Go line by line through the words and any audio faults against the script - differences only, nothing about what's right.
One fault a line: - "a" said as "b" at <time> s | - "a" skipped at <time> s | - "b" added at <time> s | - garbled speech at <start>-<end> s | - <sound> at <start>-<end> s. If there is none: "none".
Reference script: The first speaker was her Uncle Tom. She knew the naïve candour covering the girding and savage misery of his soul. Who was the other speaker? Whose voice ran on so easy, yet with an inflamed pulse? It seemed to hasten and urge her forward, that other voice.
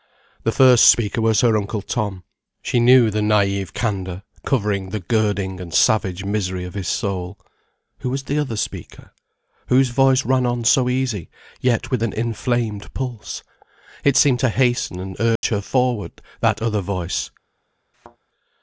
- dropout at 15.4-15.4 s
- thud at 17.9-18.2 s